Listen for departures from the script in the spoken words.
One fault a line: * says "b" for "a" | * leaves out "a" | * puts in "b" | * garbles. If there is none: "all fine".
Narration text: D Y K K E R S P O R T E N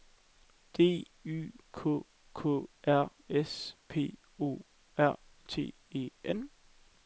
* leaves out "E"